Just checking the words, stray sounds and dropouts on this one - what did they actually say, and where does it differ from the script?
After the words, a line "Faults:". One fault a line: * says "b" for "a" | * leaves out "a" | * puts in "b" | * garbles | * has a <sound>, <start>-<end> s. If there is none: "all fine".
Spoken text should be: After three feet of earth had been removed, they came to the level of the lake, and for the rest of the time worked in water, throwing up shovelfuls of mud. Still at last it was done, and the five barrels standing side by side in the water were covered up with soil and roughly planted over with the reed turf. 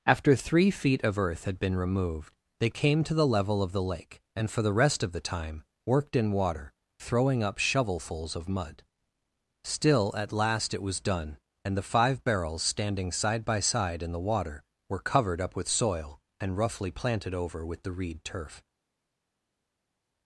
After three feet of earth had been removed, they came to the level of the lake, and for the rest of the time worked in water, throwing up shovelfuls of mud. Still at last it was done, and the five barrels standing side by side in the water were covered up with soil and roughly planted over with the reed turf.
Faults:
all fine